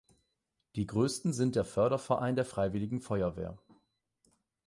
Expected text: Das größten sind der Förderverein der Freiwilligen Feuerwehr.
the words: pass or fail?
fail